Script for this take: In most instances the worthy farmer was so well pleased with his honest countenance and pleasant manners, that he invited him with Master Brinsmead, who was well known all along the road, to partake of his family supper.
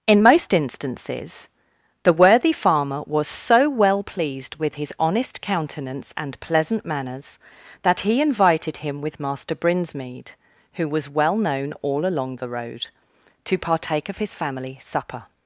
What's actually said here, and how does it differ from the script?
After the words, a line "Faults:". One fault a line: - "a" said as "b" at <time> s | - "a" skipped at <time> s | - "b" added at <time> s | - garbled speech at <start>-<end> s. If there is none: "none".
In most instances the worthy farmer was so well pleased with his honest countenance and pleasant manners, that he invited him with Master Brinsmead, who was well known all along the road, to partake of his family supper.
Faults:
none